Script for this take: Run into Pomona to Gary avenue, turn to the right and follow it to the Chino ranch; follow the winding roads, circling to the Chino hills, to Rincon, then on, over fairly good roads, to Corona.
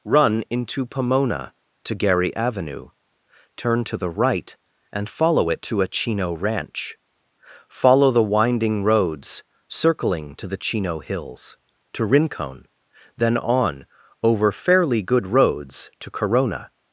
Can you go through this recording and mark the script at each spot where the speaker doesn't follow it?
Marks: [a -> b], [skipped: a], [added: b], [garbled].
Run into Pomona to Gary avenue, turn to the right and follow it to [the -> a] Chino ranch; follow the winding roads, circling to the Chino hills, to Rincon, then on, over fairly good roads, to Corona.